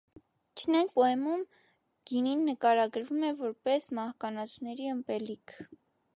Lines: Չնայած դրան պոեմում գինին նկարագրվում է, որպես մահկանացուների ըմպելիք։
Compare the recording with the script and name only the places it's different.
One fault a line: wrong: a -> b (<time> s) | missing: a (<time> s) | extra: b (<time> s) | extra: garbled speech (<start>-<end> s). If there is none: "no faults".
missing: դրան (0.9 s)